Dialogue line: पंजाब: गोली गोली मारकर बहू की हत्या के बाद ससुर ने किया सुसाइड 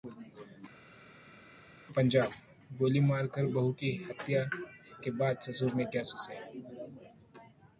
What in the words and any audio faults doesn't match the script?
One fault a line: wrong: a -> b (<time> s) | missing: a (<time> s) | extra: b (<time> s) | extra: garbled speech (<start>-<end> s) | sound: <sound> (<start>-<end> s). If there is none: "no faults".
missing: गोली (3.0 s)